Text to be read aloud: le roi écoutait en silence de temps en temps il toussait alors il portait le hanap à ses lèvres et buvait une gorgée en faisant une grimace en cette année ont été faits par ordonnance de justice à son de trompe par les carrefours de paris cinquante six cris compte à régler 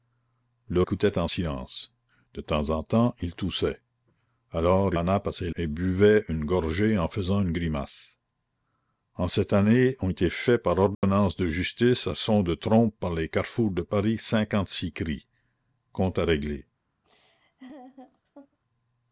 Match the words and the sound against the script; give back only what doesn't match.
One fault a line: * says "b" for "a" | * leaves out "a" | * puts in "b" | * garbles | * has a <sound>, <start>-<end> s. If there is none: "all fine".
* leaves out "roi"
* leaves out "il portait le"
* leaves out "lèvres"
* has a dropout, 10.9-11.0 s
* has a laugh, 17.0-18.6 s